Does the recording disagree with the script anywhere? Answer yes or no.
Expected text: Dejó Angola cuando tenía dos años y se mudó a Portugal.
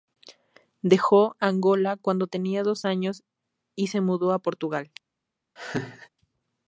no